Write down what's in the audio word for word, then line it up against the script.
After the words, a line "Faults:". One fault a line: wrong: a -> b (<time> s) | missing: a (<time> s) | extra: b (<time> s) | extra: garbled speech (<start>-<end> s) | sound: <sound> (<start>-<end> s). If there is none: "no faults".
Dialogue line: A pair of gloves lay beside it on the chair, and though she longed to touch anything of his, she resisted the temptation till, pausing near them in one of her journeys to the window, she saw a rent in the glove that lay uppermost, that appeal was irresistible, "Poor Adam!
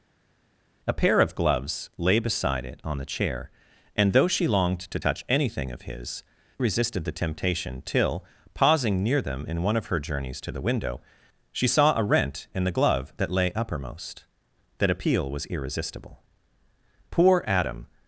A pair of gloves lay beside it on the chair, and though she longed to touch anything of his, resisted the temptation till, pausing near them in one of her journeys to the window, she saw a rent in the glove that lay uppermost, that appeal was irresistible, "Poor Adam!
Faults:
missing: she (6.2 s)